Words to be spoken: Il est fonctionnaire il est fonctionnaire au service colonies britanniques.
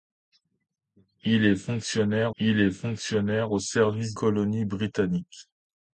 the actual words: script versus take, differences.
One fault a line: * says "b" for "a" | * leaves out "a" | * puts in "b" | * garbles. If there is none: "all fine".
all fine